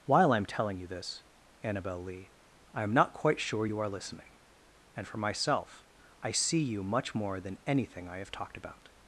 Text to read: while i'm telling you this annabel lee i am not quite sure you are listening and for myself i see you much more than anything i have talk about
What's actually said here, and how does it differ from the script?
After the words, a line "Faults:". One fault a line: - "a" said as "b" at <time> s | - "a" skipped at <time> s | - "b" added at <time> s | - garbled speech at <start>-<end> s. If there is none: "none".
while i'm telling you this annabel lee i am not quite sure you are listening and for myself i see you much more than anything i have talked about
Faults:
- "talk" said as "talked" at 8.3 s